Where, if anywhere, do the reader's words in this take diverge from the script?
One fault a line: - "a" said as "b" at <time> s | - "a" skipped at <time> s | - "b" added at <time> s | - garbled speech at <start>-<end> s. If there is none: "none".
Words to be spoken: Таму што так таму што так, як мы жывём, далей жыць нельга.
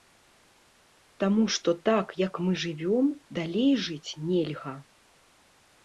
- "таму што так" skipped at 2.1 s